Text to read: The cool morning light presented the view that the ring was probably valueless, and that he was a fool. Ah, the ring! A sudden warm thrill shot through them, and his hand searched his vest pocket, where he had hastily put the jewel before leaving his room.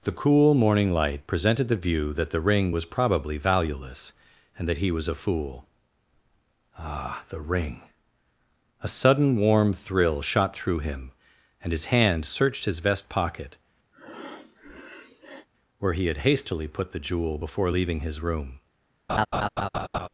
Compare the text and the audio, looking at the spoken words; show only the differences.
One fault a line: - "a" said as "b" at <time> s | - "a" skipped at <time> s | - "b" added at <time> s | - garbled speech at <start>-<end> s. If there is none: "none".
- "them" said as "him" at 10.8 s